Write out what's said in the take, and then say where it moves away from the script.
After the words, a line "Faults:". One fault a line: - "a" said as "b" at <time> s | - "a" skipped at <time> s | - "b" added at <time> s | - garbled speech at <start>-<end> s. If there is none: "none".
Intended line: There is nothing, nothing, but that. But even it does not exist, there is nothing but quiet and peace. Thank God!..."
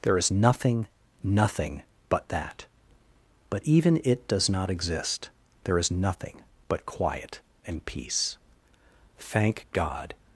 There is nothing, nothing, but that. But even it does not exist, there is nothing but quiet and peace. Thank God!..."
Faults:
none